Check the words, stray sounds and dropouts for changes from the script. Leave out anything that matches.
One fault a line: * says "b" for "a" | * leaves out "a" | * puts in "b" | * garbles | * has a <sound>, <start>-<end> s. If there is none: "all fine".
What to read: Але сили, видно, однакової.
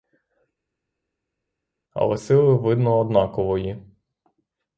all fine